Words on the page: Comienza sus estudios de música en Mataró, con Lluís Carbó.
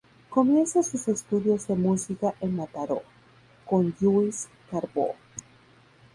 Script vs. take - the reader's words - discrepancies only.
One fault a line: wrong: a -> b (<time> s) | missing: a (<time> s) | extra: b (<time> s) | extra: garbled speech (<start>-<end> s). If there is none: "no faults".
no faults